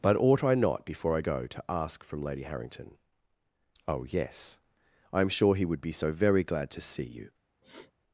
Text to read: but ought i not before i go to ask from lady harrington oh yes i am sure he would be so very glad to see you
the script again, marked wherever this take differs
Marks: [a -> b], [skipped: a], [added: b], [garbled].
but ought i not before i go to ask from lady harrington oh yes i am sure he would be so very glad to see you